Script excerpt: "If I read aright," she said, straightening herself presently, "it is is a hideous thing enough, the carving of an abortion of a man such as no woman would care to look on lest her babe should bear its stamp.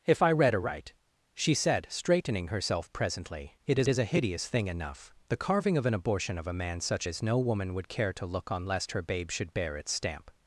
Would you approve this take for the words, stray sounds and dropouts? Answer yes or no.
yes